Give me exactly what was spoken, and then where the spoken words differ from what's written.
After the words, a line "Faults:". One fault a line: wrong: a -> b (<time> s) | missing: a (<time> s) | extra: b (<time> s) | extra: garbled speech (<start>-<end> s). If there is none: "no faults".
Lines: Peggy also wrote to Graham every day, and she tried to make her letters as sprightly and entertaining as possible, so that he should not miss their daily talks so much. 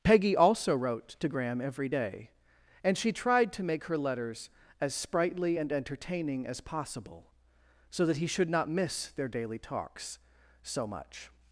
Peggy also wrote to Graham every day, and she tried to make her letters as sprightly and entertaining as possible, so that he should not miss their daily talks so much.
Faults:
no faults